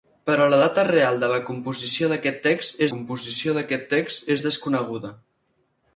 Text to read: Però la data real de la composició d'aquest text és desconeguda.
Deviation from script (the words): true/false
true